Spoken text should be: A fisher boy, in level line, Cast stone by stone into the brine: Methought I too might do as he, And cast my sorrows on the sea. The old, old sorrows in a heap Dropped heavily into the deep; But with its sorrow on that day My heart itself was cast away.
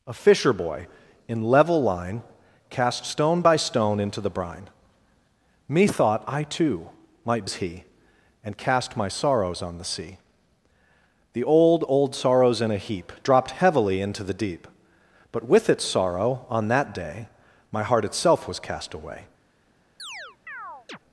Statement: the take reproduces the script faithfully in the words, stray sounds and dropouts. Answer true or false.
false